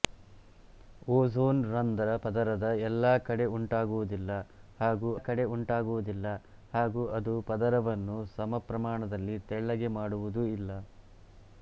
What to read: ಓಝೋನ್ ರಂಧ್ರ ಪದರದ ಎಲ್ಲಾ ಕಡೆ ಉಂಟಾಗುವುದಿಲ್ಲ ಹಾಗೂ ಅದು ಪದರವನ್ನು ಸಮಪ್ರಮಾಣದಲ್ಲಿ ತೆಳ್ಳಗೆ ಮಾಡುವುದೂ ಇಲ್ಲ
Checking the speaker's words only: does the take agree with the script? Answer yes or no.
no